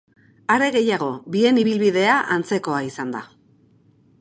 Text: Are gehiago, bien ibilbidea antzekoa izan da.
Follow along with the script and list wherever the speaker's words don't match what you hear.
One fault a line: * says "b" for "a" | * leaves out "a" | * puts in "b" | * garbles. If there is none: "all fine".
all fine